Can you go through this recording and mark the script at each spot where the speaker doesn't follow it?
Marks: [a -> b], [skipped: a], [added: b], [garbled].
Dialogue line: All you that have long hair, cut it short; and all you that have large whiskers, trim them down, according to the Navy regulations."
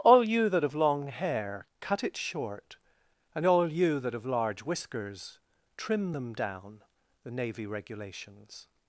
All you that have long hair, cut it short; and all you that have large whiskers, trim them down, [skipped: according to] the Navy regulations."